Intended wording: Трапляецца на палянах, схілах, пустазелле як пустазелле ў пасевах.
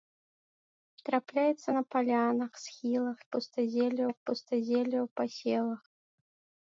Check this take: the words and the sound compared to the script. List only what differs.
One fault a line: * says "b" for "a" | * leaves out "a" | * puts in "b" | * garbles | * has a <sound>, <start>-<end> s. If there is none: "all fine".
all fine